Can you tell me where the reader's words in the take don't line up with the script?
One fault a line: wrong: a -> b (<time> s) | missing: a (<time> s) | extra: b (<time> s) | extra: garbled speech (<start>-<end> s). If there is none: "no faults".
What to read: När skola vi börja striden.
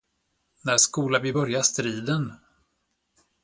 no faults